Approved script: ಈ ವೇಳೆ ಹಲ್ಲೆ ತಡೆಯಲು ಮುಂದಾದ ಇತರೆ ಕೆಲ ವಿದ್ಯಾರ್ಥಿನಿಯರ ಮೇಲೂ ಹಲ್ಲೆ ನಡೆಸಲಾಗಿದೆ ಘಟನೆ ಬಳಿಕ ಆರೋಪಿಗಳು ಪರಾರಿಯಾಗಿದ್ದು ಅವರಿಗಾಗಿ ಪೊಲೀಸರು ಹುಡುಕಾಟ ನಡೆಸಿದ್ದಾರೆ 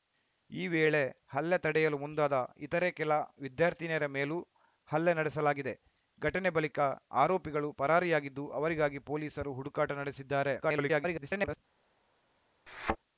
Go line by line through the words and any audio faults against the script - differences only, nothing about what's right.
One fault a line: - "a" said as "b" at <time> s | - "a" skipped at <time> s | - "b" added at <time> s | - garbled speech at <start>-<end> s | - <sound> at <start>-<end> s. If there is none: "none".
- garbled speech at 10.6-11.6 s
- thud at 12.7-13.0 s